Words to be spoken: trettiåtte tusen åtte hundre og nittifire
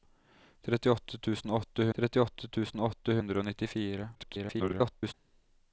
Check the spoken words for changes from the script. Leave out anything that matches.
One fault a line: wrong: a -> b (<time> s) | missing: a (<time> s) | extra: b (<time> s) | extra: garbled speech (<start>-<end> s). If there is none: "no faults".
extra: trettiåtte tusen åtte (2.0 s)
extra: garbled speech (4.1-5.1 s)